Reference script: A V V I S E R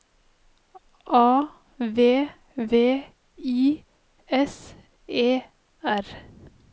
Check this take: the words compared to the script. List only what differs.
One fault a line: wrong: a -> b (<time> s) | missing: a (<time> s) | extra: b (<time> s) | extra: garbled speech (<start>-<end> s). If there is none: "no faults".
no faults